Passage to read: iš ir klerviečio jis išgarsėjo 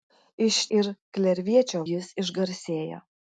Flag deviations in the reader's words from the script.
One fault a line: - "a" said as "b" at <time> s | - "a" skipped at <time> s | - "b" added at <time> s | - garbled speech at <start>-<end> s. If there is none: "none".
none